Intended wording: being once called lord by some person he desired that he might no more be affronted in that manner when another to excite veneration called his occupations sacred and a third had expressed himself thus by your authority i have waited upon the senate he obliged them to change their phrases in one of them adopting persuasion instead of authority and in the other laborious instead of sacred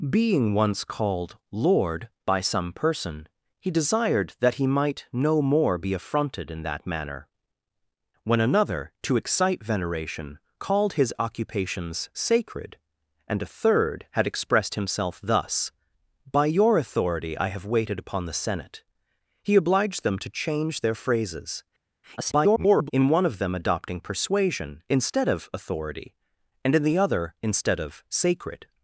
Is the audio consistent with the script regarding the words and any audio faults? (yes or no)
no